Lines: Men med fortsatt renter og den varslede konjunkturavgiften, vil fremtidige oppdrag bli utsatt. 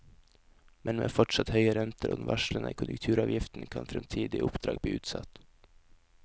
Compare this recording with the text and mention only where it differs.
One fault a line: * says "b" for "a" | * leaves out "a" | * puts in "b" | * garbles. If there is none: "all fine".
* puts in "høye"
* says "kan" for "vil"